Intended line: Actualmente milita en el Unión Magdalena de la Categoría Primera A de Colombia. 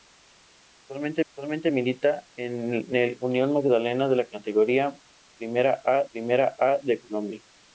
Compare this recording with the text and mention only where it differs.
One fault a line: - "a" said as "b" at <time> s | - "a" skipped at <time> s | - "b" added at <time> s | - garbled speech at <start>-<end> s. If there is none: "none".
- "actualmente" added at 1.3 s
- "Primera A" added at 6.1 s